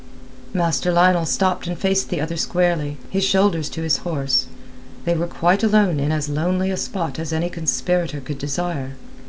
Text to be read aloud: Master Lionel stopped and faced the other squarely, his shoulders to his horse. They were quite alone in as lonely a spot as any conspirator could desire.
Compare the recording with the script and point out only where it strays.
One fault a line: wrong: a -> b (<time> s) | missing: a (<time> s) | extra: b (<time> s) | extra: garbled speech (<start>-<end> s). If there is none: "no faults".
no faults